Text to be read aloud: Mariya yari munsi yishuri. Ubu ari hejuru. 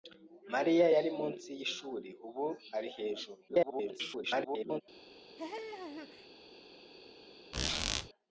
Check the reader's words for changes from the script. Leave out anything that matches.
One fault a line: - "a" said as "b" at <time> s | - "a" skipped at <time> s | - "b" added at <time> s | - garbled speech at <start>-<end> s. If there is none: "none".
- garbled speech at 3.5-4.8 s